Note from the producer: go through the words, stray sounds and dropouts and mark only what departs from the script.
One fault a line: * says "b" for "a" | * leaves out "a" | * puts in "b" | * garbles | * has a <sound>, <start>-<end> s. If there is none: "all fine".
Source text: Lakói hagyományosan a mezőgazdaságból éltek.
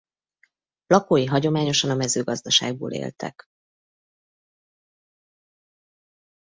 all fine